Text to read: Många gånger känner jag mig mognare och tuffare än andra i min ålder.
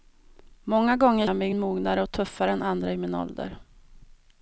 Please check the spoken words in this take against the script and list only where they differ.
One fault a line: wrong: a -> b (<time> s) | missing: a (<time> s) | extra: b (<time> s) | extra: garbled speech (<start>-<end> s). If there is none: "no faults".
missing: känner (1.3 s)